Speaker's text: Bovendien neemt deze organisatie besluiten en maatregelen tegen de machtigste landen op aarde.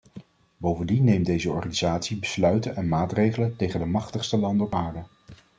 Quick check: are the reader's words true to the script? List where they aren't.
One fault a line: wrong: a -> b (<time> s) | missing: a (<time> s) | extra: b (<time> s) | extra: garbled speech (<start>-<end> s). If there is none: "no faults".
no faults